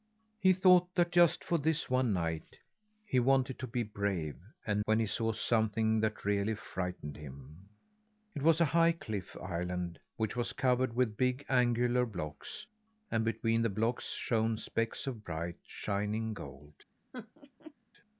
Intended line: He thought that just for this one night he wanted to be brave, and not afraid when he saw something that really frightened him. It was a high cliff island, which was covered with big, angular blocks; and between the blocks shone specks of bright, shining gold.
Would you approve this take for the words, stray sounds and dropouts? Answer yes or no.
no